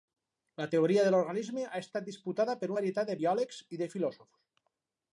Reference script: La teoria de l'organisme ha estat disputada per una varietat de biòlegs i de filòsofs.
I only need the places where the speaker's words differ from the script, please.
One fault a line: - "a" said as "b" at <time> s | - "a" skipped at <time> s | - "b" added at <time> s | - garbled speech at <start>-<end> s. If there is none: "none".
- "una" skipped at 2.7 s